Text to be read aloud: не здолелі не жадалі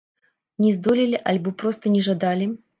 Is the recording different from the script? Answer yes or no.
yes